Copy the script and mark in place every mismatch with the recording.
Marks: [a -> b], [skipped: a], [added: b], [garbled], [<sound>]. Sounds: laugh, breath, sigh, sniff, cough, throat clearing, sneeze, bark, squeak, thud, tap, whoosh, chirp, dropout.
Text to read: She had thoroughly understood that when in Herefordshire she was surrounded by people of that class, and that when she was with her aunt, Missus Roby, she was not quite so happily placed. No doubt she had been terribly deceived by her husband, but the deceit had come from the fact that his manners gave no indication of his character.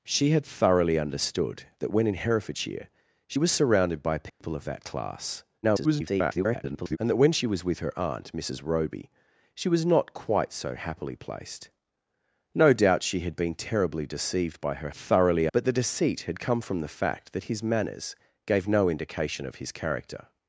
She had thoroughly understood that when in Herefordshire she was surrounded by people [dropout] of that class, [garbled] and that when she was with her aunt, Missus Roby, she was not quite so happily placed. No doubt she had been terribly deceived by her [husband, -> thoroughly] but the deceit had come from the fact that his manners gave no indication of his character.